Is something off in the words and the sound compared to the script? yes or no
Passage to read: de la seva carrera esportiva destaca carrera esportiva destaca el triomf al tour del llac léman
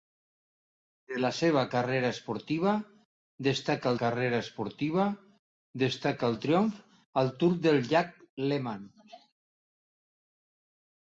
no